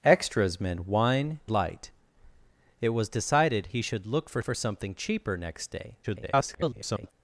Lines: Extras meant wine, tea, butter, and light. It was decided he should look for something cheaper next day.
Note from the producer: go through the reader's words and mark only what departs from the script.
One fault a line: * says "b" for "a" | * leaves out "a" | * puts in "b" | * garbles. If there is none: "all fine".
* leaves out "tea butter and"
* puts in "for"
* garbles